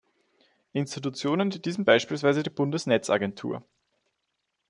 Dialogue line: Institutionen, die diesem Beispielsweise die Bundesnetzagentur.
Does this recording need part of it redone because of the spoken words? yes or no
no